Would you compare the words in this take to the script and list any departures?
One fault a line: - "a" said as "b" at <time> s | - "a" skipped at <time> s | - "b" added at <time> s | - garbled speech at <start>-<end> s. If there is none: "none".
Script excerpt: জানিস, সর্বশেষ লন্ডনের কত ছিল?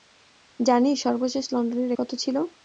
none